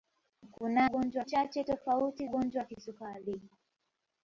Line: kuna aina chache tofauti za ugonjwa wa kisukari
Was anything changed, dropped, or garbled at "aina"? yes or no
yes